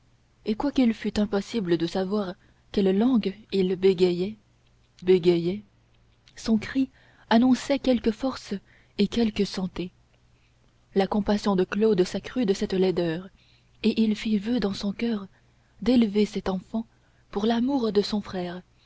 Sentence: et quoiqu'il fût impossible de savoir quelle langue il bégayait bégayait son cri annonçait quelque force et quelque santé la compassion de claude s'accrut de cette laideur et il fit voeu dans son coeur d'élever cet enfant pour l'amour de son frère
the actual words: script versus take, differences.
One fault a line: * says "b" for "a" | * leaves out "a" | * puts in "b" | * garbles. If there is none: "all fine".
all fine